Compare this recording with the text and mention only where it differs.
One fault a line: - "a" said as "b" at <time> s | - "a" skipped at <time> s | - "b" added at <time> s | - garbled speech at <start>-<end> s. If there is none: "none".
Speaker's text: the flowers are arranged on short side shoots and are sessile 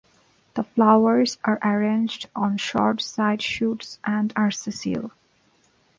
none